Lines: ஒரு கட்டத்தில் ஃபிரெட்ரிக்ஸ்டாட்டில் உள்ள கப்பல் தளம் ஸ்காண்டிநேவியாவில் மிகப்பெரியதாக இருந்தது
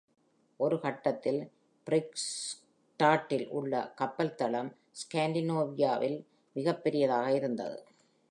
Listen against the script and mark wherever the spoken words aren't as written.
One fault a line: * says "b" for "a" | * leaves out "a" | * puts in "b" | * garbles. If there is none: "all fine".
all fine